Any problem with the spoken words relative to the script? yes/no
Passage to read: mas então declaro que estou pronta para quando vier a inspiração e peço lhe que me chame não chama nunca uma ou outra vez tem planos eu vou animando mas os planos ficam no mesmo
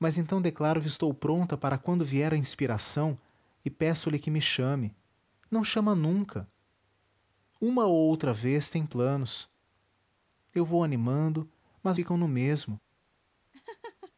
yes